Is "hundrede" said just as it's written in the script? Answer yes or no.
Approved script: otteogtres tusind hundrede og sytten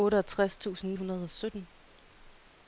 yes